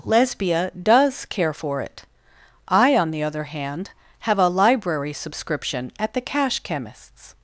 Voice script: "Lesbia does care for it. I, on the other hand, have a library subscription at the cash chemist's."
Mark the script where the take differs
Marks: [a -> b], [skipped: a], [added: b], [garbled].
"Lesbia does care for it. I, on the other hand, have a library subscription at the cash chemist's."